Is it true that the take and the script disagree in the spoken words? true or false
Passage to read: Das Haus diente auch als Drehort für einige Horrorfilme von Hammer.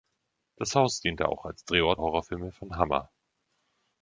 true